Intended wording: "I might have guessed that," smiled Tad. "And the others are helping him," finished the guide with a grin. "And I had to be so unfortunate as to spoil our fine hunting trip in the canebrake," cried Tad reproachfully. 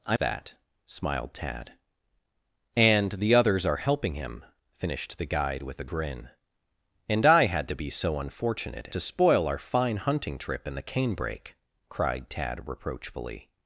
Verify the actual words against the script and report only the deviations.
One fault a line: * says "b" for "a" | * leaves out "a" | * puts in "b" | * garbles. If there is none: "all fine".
* leaves out "might have guessed"
* leaves out "as"